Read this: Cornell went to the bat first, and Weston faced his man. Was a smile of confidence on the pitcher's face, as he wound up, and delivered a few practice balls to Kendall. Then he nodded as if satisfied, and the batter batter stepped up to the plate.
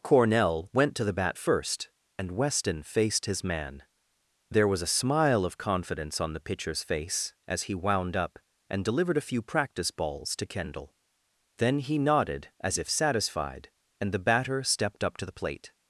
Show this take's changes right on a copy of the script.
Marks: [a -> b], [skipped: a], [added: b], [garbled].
Cornell went to the bat first, and Weston faced his man. [added: There] Was a smile of confidence on the pitcher's face, as he wound up, and delivered a few practice balls to Kendall. Then he nodded as if satisfied, and the batter [skipped: batter] stepped up to the plate.